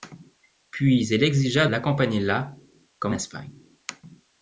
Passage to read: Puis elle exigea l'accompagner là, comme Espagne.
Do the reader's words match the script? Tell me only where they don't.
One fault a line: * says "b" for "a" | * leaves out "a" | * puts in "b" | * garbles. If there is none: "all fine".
all fine